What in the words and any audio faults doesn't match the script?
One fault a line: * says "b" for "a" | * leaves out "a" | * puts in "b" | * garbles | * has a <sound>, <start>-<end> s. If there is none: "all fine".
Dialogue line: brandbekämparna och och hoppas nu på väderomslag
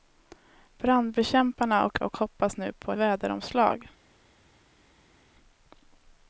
all fine